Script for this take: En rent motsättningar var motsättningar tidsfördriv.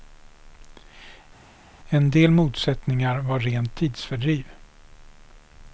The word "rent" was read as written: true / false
false